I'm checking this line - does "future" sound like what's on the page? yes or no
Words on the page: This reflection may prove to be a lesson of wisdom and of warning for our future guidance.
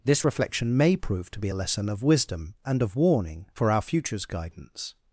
no